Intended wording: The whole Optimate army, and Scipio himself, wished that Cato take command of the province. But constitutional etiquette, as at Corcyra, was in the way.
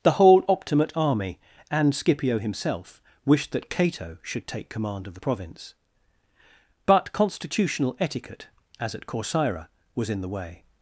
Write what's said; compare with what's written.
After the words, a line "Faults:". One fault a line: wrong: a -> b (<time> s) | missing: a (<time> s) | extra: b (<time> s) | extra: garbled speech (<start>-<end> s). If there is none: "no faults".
The whole Optimate army, and Scipio himself, wished that Cato should take command of the province. But constitutional etiquette, as at Corcyra, was in the way.
Faults:
extra: should (4.2 s)